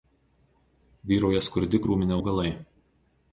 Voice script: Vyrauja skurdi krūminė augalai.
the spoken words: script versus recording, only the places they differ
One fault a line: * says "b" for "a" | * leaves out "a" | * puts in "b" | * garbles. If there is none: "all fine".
all fine